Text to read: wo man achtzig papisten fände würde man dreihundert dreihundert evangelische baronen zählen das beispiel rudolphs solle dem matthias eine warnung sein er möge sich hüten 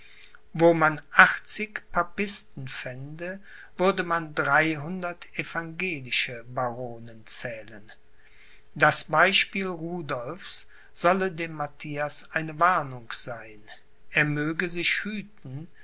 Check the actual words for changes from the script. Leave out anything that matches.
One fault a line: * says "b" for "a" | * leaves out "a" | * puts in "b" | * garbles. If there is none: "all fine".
* leaves out "dreihundert"